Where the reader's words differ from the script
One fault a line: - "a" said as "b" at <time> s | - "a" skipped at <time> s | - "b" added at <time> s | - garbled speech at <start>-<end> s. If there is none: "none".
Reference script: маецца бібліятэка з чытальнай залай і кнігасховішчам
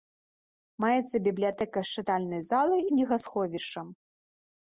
- "і" skipped at 2.8 s